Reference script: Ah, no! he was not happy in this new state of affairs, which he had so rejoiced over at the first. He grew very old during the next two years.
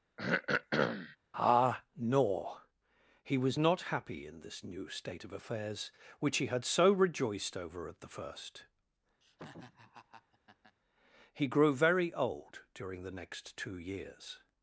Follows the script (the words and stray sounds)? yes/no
no